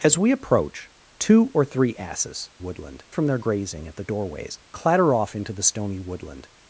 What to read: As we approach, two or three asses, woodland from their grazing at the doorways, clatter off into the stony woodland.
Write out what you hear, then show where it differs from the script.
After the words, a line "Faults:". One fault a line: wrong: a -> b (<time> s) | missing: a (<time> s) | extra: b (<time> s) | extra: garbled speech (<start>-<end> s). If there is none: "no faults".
As we approach, two or three asses, woodland from their grazing at the doorways, clatter off into the stony woodland.
Faults:
no faults